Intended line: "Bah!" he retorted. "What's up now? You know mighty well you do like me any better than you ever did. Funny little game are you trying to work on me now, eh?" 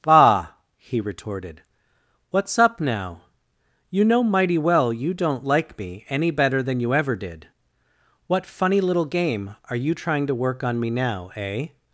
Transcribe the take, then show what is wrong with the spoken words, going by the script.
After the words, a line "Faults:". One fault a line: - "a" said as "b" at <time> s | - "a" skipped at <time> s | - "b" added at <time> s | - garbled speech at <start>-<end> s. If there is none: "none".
"Bah!" he retorted. "What's up now? You know mighty well you don't like me any better than you ever did. What funny little game are you trying to work on me now, eh?"
Faults:
- "do" said as "don't" at 5.1 s
- "What" added at 8.3 s